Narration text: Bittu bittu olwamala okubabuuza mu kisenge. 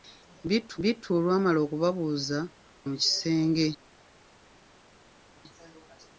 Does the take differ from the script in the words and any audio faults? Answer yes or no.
no